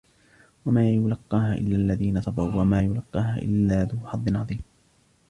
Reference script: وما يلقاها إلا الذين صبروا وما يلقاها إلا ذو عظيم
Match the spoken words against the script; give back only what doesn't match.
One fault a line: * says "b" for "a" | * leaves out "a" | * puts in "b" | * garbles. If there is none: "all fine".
* puts in "حظ"